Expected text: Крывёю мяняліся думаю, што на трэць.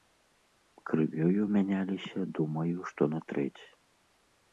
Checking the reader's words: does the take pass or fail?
pass